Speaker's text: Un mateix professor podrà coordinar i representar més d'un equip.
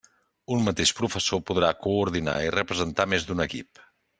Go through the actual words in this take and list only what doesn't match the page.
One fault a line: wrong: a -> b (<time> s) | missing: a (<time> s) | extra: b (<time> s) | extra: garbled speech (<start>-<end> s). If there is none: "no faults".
no faults